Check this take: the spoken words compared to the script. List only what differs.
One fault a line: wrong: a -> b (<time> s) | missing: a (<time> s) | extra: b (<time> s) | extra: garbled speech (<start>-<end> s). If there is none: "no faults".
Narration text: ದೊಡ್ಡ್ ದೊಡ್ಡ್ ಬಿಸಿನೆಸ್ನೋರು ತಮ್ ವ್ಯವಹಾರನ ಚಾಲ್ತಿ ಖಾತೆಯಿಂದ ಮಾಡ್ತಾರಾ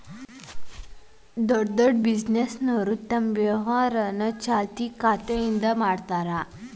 no faults